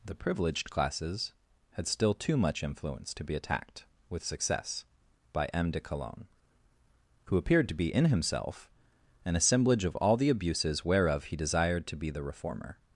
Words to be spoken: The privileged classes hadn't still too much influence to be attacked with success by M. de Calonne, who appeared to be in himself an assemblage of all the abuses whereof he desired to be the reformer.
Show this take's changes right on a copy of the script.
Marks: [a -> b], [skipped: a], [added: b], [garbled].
The privileged classes [hadn't -> had] still too much influence to be attacked with success by M. de Calonne, who appeared to be in himself an assemblage of all the abuses whereof he desired to be the reformer.